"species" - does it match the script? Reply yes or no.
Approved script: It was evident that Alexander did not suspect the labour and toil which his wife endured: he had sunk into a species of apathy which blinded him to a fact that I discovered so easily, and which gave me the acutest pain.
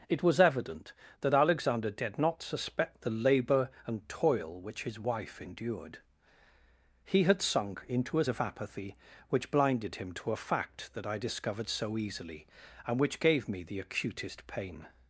no